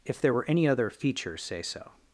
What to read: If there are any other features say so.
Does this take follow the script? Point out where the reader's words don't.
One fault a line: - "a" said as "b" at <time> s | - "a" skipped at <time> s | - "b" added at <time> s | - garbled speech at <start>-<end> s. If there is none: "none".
- "are" said as "were" at 0.3 s